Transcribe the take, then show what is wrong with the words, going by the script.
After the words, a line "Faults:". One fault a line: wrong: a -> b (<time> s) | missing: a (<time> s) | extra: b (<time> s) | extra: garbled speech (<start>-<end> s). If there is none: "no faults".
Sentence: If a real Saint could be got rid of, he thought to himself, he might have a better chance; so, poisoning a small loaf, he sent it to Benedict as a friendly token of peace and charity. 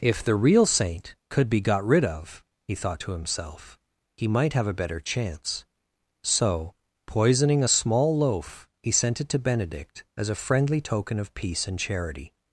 If the real Saint could be got rid of, he thought to himself, he might have a better chance; so, poisoning a small loaf, he sent it to Benedict as a friendly token of peace and charity.
Faults:
wrong: a -> the (0.2 s)